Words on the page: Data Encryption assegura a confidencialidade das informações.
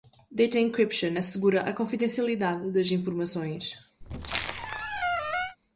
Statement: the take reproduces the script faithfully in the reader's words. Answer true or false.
true